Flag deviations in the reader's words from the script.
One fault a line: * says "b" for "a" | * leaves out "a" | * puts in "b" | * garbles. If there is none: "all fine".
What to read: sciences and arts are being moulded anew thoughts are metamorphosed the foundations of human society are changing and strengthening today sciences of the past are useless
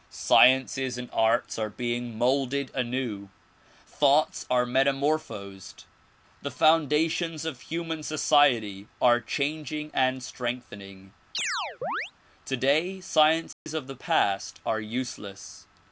all fine